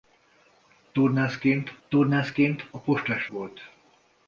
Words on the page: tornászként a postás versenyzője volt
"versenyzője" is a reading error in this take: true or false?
true